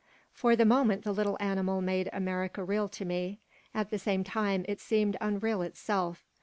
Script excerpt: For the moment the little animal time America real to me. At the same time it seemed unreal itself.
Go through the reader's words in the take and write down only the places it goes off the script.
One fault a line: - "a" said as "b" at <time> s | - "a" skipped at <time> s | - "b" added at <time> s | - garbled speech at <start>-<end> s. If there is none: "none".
- "time" said as "made" at 1.8 s